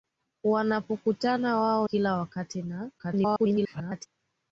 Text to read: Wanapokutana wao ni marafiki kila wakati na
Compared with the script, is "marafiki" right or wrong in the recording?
wrong